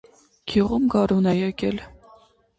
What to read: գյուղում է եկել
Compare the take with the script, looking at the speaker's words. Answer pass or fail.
fail